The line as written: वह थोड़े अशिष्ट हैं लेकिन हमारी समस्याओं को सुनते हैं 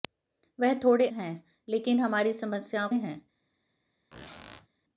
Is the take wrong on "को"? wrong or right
wrong